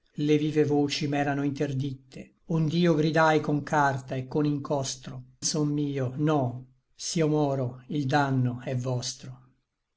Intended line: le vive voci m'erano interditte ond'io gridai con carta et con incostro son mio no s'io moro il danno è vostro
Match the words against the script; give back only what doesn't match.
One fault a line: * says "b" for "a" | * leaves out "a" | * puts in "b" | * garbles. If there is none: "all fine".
all fine